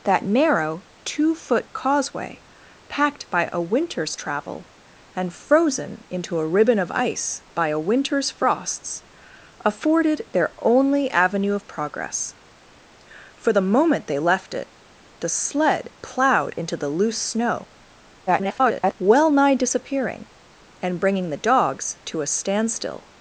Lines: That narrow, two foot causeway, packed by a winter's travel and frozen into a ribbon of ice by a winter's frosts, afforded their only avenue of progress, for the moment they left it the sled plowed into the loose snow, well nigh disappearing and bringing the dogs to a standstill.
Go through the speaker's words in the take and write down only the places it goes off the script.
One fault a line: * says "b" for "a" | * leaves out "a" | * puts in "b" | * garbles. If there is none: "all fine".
* garbles